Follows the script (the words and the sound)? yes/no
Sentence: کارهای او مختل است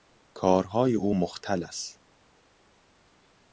yes